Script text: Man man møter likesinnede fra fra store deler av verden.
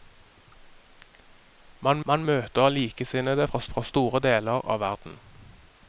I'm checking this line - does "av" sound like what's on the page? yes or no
yes